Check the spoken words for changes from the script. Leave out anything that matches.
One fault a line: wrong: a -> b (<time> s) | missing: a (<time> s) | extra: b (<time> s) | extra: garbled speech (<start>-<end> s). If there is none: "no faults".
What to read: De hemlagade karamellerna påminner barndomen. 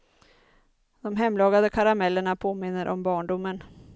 extra: om (2.9 s)